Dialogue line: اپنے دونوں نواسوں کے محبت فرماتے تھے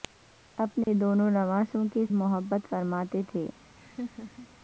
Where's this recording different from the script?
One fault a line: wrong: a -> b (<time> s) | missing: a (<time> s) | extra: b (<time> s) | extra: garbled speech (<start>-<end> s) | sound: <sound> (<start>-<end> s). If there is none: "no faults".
sound: dropout (0.8-0.9 s)
sound: laugh (3.8-4.5 s)